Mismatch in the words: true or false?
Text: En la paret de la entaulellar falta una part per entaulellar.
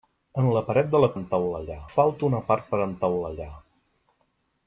false